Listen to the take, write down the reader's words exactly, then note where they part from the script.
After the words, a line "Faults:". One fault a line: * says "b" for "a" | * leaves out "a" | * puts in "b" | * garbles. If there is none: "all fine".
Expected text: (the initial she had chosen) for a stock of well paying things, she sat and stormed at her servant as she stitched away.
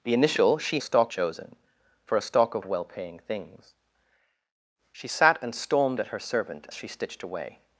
(the initial she stock chosen) for a stock of well paying things, she sat and stormed at her servant she stitched away.
Faults:
* says "stock" for "had"
* leaves out "as"